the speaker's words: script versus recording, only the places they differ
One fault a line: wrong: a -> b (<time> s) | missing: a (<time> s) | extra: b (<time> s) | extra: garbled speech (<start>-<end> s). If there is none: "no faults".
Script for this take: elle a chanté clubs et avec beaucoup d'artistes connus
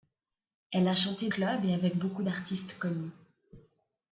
no faults